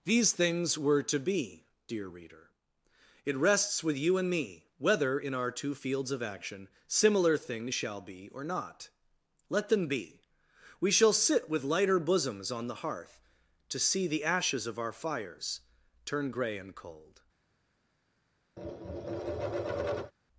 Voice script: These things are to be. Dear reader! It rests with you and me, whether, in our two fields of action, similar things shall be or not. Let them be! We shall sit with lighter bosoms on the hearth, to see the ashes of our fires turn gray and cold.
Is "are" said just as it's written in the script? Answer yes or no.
no